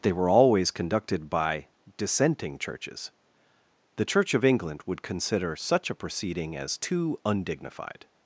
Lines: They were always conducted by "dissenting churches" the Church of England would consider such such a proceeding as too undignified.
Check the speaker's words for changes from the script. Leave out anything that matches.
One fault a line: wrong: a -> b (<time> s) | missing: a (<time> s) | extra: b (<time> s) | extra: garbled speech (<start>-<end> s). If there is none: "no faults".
missing: such (5.9 s)